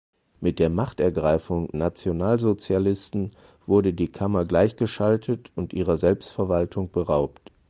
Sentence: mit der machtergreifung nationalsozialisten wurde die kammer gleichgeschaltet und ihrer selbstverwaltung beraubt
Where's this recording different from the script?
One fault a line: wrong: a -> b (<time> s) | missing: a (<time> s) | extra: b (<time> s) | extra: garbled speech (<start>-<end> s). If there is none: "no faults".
no faults